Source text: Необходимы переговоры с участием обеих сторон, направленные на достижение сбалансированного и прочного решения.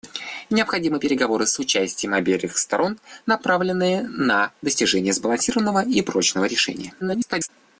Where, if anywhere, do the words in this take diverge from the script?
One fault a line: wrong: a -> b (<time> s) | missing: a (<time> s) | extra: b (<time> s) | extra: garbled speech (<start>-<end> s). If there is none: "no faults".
extra: garbled speech (7.0-7.5 s)